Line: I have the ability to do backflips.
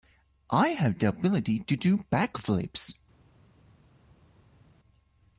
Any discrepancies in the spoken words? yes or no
no